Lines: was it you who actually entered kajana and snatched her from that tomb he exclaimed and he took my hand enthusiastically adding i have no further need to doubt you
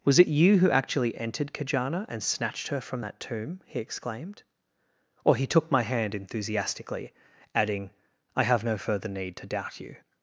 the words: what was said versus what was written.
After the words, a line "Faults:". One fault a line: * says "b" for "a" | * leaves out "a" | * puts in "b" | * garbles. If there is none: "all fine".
was it you who actually entered kajana and snatched her from that tomb he exclaimed or he took my hand enthusiastically adding i have no further need to doubt you
Faults:
* says "or" for "and"